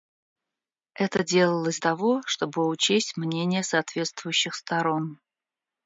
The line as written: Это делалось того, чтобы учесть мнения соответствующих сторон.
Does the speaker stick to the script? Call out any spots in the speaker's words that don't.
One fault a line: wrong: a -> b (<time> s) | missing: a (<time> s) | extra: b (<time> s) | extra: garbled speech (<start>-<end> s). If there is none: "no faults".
no faults